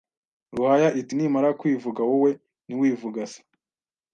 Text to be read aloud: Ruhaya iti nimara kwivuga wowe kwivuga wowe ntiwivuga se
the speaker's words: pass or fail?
fail